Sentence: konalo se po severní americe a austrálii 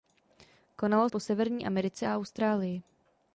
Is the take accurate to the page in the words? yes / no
no